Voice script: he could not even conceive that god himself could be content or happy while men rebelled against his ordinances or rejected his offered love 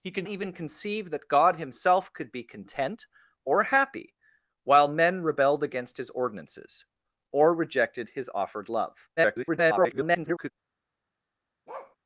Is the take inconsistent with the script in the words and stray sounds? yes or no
yes